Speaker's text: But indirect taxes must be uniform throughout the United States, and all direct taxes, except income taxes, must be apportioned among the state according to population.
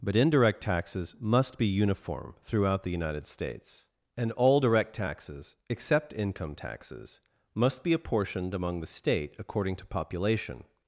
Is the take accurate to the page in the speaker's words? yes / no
yes